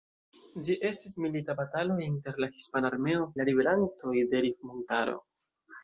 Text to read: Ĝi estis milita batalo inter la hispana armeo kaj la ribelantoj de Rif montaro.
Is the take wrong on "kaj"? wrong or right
wrong